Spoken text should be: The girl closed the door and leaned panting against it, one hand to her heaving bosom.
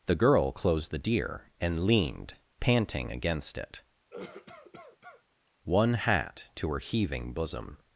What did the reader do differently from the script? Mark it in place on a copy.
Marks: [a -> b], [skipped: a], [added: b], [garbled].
The girl closed the [door -> deer] and leaned panting against it, one [hand -> hat] to her heaving bosom.